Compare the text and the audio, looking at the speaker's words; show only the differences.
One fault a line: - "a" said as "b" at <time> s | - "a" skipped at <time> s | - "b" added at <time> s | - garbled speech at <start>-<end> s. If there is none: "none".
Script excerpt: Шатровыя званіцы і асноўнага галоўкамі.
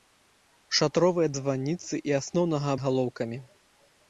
none